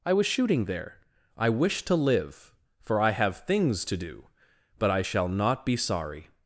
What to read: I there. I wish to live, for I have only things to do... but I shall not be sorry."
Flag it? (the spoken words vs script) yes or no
yes